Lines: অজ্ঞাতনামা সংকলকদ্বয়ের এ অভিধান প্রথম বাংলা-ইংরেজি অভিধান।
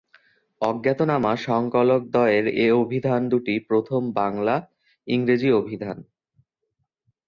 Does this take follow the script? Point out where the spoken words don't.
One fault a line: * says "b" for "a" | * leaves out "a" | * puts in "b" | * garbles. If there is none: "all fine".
* puts in "দুটি"